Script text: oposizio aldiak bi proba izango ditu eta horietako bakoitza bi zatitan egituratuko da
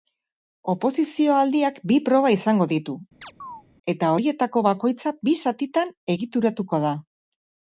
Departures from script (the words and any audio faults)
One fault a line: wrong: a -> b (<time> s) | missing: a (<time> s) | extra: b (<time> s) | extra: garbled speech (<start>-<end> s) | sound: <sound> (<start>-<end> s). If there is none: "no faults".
sound: chirp (3.2-3.6 s)